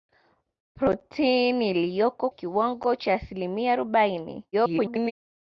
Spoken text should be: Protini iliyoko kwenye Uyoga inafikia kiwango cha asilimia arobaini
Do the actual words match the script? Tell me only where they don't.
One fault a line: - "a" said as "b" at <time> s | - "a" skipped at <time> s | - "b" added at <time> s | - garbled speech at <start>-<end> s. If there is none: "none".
- "kwenye Uyoga inafikia" skipped at 2.3 s
- garbled speech at 4.5-5.1 s